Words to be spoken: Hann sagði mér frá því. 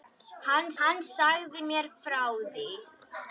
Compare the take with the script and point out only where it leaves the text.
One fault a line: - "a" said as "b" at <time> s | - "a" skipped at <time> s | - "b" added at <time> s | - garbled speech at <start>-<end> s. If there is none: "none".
- "hann" added at 0.8 s